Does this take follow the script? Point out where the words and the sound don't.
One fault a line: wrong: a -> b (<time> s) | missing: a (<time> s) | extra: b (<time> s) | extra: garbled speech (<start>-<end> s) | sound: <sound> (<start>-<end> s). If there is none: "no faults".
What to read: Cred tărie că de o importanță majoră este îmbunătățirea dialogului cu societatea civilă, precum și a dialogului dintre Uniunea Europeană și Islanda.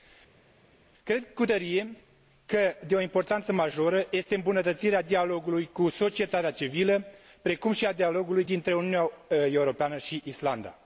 extra: cu (1.3 s)